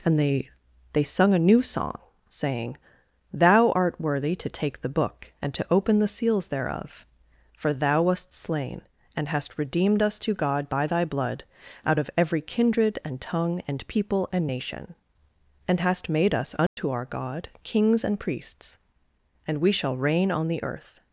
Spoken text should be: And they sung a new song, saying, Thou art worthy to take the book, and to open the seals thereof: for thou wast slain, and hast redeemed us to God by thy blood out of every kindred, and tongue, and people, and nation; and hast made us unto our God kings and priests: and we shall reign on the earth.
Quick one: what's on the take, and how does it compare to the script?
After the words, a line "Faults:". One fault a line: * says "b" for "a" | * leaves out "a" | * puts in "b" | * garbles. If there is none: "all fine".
And they they sung a new song, saying, Thou art worthy to take the book, and to open the seals thereof: for thou wast slain, and hast redeemed us to God by thy blood out of every kindred, and tongue, and people, and nation; and hast made us unto our God kings and priests: and we shall reign on the earth.
Faults:
* puts in "they"